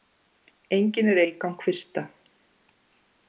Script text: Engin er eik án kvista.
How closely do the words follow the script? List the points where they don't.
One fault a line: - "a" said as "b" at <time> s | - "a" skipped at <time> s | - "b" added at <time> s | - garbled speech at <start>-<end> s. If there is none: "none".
none